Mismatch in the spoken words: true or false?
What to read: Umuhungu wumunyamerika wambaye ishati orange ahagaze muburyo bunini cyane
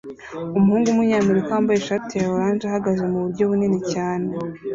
true